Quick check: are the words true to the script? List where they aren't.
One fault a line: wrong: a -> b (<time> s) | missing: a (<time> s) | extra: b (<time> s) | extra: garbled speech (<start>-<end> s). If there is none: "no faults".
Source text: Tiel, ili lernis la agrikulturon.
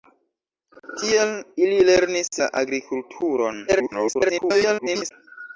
extra: garbled speech (3.7-5.1 s)